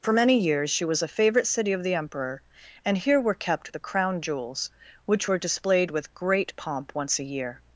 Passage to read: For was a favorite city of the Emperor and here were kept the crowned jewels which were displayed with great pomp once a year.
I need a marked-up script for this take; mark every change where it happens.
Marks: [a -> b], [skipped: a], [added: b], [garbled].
For [added: many years she] was a favorite city of the Emperor and here were kept the [crowned -> crown] jewels which were displayed with great pomp once a year.